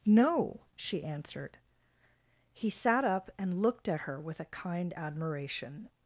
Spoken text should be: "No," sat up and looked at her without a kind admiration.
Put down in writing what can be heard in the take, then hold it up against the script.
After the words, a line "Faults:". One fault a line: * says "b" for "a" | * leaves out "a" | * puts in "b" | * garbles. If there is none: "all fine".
"No," she answered. He sat up and looked at her with a kind admiration.
Faults:
* puts in "she answered He"
* says "with" for "without"